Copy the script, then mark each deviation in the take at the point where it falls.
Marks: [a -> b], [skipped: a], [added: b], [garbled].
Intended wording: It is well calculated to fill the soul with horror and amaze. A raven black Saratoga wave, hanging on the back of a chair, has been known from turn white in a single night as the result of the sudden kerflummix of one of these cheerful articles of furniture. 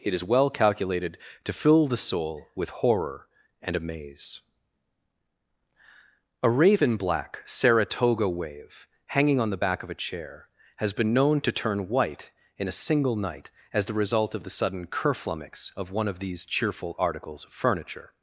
It is well calculated to fill the soul with horror and amaze. A raven black Saratoga wave, hanging on the back of a chair, has been known [from -> to] turn white in a single night as the result of the sudden kerflummix of one of these cheerful articles of furniture.